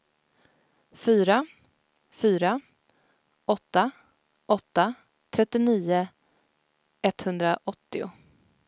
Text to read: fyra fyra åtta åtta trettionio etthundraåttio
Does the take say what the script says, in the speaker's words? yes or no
yes